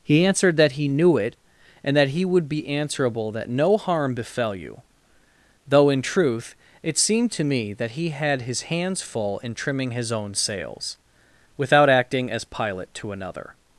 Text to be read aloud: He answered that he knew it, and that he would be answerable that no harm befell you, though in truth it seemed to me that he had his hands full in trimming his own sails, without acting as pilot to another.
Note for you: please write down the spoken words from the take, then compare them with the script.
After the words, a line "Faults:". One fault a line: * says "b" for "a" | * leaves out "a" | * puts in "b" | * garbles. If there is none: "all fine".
He answered that he knew it, and that he would be answerable that no harm befell you, though in truth it seemed to me that he had his hands full in trimming his own sails, without acting as pilot to another.
Faults:
all fine